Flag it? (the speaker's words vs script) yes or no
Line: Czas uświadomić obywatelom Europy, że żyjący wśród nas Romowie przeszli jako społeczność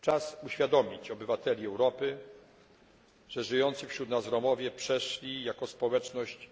no